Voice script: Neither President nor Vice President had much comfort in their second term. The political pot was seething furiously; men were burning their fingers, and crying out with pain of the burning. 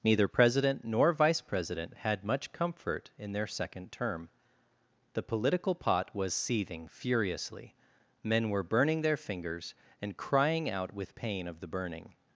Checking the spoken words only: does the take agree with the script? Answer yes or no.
yes